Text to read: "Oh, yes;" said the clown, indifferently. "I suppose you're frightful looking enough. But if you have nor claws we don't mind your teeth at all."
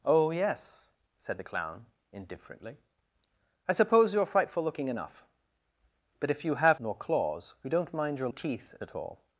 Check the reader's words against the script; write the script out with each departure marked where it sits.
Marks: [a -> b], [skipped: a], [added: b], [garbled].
"Oh, yes;" said the clown, indifferently. "I suppose you're frightful looking enough. But if you have nor claws we don't mind your teeth at all."